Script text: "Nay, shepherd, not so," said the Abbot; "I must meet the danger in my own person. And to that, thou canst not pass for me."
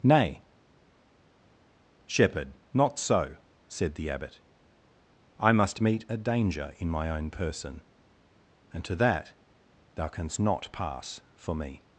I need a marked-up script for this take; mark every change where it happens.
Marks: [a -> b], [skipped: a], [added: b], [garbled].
"Nay, shepherd, not so," said the Abbot; "I must meet [the -> a] danger in my own person. And to that, thou canst not pass for me."